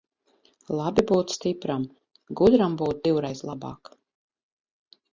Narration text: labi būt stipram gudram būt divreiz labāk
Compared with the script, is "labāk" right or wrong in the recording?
right